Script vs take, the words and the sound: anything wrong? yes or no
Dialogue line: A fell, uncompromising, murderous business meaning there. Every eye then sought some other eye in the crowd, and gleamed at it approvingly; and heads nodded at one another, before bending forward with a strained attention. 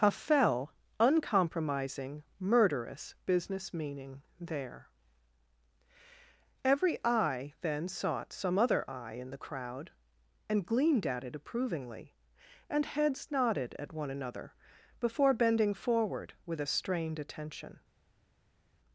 no